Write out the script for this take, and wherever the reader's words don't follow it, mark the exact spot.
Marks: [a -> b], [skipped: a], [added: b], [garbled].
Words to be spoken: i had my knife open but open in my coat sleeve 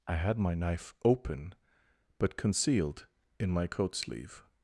i had my knife open but [open -> concealed] in my coat sleeve